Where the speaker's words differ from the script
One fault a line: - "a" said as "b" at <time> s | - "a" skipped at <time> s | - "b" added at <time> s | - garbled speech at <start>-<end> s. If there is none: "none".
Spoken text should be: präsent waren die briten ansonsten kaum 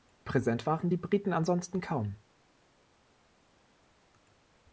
none